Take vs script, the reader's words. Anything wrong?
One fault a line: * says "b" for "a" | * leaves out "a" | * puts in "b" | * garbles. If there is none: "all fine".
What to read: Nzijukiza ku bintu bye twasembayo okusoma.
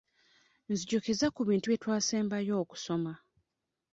all fine